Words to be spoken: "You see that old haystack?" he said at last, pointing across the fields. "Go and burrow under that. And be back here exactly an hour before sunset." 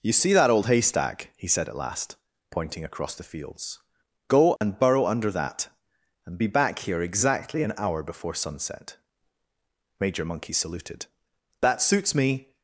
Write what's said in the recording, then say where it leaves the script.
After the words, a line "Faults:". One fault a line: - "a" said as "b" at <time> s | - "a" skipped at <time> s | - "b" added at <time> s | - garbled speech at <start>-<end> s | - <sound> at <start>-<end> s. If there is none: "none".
"You see that old haystack?" he said at last, pointing across the fields. "Go and burrow under that. And be back here exactly an hour before sunset." Major Monkey saluted. "That suits me
Faults:
- dropout at 4.6-4.6 s
- "Major Monkey saluted That suits me" added at 10.0 s